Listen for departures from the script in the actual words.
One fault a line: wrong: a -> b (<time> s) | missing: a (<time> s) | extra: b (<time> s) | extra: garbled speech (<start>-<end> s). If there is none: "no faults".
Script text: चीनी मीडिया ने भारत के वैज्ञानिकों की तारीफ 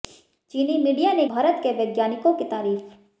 no faults